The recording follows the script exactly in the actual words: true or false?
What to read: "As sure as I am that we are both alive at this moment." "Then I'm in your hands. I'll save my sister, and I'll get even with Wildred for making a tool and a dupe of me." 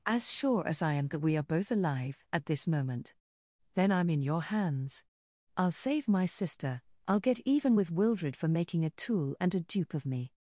false